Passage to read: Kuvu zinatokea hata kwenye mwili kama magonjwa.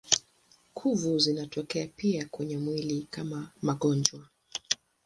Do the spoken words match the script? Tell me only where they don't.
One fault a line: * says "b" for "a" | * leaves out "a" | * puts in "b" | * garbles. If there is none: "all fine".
* says "pia" for "hata"